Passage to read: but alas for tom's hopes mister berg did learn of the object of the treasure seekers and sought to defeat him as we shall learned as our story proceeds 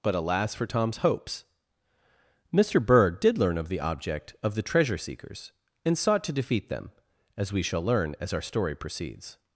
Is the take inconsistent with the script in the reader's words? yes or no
yes